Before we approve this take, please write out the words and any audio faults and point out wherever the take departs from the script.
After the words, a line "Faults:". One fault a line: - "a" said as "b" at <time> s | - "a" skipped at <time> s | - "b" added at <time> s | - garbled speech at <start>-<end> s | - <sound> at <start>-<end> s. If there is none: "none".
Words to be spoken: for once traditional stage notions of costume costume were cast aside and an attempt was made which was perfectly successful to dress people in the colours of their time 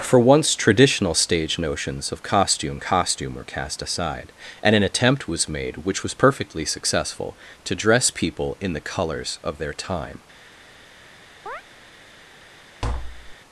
for once traditional stage notions of costume costume were cast aside and an attempt was made which was perfectly successful to dress people in the colours of their time
Faults:
- chirp at 11.5-11.6 s
- tap at 12.8-13.4 s